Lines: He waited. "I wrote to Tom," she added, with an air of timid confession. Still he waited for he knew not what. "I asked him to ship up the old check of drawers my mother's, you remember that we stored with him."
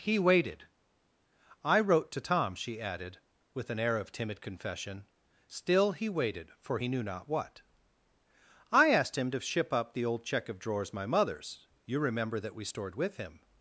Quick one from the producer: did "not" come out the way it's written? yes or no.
yes